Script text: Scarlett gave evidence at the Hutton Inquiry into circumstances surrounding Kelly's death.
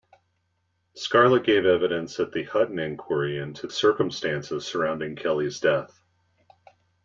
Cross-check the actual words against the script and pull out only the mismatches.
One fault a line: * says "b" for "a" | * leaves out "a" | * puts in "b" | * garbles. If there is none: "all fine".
all fine